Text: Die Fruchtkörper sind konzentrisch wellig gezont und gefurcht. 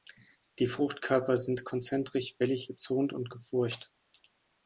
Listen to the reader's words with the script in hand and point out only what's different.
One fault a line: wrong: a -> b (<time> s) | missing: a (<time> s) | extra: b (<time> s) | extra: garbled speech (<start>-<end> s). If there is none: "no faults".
no faults